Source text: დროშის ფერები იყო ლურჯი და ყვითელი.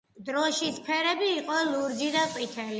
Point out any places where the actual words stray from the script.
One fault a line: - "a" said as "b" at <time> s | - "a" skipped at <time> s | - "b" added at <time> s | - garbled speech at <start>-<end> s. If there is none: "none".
none